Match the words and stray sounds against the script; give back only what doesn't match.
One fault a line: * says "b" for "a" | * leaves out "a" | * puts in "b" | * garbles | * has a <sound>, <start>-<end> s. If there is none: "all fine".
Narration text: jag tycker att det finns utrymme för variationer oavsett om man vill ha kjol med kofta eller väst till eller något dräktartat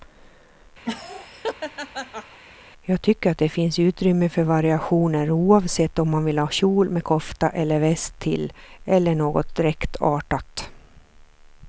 * has a laugh, 0.8-2.4 s